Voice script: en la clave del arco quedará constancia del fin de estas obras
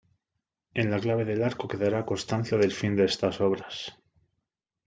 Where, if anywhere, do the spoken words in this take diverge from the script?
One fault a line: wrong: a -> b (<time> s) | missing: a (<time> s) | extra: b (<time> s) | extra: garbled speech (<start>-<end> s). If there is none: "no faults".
no faults